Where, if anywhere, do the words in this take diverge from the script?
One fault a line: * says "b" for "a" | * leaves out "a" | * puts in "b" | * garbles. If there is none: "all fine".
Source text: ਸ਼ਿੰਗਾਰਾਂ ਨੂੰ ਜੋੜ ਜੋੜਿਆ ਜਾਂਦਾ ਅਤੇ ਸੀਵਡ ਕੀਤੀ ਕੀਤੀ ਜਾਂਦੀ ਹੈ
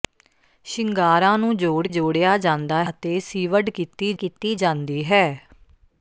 all fine